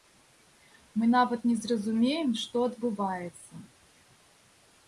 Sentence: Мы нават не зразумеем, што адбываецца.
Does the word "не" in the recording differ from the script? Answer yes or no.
no